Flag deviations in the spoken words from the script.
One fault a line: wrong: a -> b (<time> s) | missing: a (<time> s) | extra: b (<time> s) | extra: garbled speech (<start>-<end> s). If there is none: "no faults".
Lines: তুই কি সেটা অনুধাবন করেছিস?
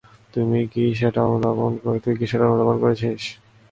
no faults